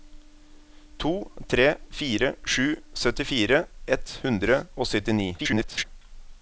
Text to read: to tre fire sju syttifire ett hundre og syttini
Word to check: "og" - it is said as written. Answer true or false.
true